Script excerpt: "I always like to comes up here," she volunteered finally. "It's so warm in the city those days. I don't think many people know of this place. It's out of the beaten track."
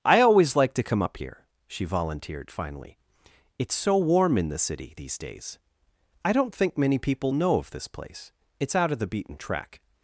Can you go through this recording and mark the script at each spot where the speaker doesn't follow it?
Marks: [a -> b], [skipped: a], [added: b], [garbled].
"I always like to [comes -> come] up here," she volunteered finally. "It's so warm in the city [those -> these] days. I don't think many people know of this place. It's out of the beaten track."